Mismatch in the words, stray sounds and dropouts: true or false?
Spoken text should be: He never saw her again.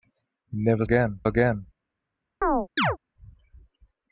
true